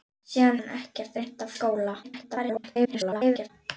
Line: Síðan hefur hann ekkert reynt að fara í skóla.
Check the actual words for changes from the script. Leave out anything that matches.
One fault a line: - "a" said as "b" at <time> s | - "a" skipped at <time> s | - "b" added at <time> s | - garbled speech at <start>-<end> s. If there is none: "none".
- "hefur" skipped at 0.6 s
- "fara" skipped at 1.5 s
- garbled speech at 2.0-3.5 s